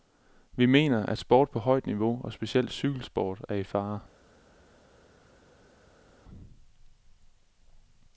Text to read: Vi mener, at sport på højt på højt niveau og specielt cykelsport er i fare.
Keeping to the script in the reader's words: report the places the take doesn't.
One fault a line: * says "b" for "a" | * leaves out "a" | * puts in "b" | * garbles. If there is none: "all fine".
* leaves out "på højt"